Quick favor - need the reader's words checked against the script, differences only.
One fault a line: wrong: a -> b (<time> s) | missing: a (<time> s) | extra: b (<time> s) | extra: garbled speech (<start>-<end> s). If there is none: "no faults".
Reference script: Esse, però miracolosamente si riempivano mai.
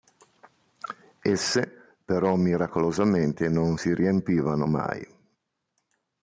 extra: non (3.5 s)